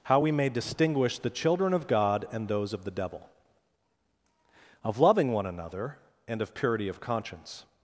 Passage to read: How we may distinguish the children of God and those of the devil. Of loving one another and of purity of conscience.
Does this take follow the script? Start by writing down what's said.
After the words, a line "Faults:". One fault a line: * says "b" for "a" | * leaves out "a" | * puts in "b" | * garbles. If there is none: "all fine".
How we may distinguish the children of God and those of the devil. Of loving one another and of purity of conscience.
Faults:
all fine